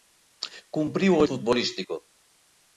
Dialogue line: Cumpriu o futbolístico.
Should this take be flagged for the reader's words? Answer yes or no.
no